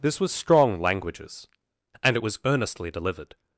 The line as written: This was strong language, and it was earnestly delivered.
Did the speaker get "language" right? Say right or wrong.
wrong